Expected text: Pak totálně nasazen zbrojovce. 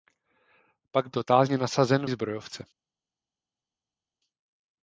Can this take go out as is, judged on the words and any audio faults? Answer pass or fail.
pass